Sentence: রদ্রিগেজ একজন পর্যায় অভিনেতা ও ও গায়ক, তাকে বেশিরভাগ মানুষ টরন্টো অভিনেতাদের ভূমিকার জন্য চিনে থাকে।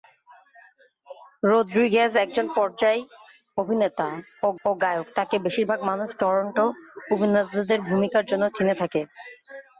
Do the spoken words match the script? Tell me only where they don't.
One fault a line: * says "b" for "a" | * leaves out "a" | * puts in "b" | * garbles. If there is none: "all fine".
all fine